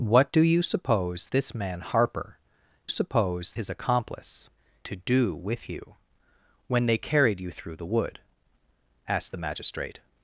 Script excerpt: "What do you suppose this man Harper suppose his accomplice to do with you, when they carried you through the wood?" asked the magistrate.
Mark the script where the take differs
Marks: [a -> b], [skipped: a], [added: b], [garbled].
"What do you suppose this man Harper suppose his accomplice to do with you, when they carried you through the wood?" asked the magistrate.